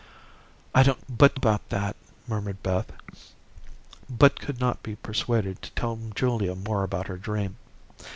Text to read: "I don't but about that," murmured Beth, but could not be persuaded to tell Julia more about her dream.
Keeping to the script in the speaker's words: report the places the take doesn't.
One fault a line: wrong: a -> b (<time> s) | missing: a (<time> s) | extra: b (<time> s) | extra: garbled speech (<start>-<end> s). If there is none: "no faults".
no faults